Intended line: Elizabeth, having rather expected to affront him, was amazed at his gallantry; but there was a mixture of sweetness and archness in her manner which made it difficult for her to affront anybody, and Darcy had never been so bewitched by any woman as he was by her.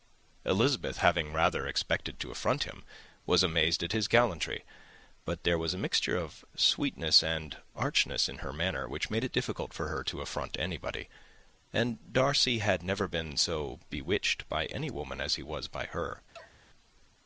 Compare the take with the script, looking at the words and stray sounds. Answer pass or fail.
fail